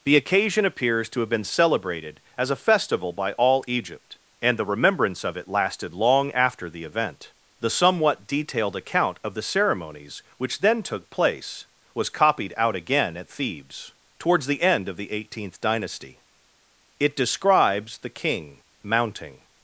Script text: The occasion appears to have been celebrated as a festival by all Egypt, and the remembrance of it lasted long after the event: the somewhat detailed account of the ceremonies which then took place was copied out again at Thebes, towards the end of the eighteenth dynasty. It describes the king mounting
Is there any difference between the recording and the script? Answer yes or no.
no